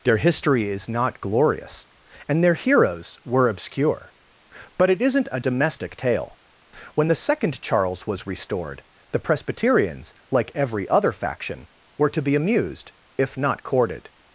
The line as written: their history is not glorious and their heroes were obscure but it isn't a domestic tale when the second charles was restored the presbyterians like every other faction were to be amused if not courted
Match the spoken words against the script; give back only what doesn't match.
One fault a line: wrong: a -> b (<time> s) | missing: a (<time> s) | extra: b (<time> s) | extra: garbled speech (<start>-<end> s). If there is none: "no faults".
no faults